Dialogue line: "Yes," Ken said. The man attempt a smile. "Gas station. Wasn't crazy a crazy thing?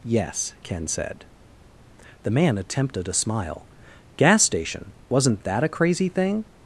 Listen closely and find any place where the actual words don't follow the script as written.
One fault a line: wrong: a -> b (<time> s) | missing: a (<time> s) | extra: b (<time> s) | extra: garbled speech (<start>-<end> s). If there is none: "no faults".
wrong: attempt -> attempted (2.6 s)
wrong: crazy -> that (5.4 s)